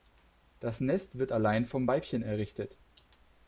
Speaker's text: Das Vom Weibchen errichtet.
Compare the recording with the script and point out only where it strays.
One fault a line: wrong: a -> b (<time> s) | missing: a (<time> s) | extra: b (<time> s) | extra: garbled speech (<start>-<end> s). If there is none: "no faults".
extra: Nest wird allein (0.8 s)